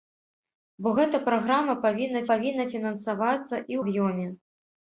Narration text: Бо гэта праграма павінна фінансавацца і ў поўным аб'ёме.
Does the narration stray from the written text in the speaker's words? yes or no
yes